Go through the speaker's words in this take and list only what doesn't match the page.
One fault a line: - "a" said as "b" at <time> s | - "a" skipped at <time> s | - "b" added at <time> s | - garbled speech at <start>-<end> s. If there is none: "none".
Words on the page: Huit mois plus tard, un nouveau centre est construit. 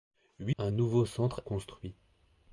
- "mois plus tard" skipped at 0.6 s
- "est" skipped at 1.4 s